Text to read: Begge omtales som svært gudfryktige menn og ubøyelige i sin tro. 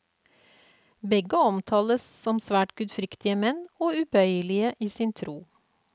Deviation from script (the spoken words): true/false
false